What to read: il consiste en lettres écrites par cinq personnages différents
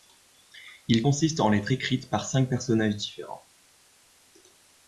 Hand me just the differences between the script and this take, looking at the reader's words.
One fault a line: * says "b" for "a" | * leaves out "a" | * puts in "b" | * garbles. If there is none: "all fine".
all fine